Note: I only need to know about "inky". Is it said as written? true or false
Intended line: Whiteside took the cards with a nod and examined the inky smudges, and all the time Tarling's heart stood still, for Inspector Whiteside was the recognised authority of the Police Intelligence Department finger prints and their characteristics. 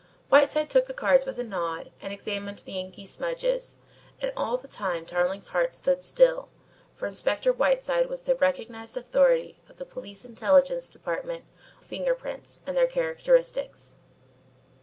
true